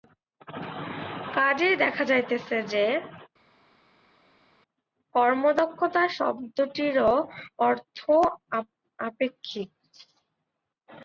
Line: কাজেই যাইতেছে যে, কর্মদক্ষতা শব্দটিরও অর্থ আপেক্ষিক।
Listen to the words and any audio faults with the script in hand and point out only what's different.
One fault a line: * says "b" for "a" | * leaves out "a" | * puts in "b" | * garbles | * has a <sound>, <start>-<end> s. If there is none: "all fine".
* puts in "দেখা"